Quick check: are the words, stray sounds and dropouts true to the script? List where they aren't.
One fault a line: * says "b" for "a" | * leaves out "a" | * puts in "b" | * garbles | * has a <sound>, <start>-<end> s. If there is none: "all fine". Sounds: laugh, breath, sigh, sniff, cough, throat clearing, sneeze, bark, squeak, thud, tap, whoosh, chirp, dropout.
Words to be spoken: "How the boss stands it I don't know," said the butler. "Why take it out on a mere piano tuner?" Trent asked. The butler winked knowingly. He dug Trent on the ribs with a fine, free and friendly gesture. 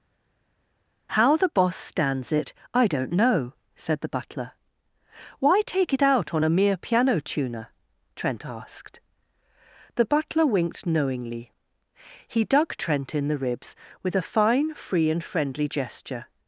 * says "in" for "on"